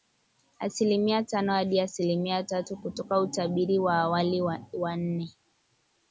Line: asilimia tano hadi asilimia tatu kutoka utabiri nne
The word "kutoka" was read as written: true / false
true